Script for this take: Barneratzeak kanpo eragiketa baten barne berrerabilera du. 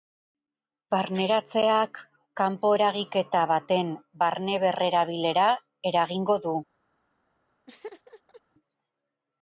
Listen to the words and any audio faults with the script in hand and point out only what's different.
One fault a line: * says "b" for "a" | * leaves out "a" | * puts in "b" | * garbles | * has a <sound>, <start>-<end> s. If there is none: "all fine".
* puts in "eragingo"
* has a laugh, 7.7-8.4 s